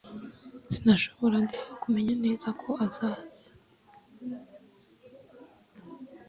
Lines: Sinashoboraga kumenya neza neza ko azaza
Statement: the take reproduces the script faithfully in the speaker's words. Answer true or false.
false